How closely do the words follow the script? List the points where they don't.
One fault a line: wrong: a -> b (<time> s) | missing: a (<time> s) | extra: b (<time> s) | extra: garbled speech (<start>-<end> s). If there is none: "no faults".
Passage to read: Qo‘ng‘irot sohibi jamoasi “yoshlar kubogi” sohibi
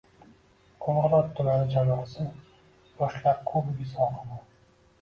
wrong: sohibi -> tumani (1.4 s)